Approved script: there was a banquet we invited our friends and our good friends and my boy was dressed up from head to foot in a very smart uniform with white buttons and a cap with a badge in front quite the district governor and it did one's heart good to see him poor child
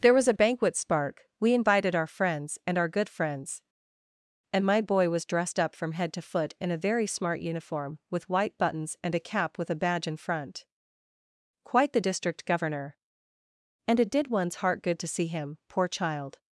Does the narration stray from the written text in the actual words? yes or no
yes